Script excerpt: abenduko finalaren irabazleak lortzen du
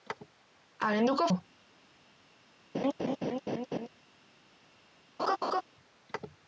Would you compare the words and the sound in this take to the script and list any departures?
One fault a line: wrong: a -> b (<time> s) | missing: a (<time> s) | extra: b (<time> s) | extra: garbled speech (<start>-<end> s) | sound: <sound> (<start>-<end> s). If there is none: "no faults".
missing: finalaren irabazleak lortzen (1.3 s)
sound: laugh (2.7-3.9 s)
sound: laugh (5.2-5.6 s)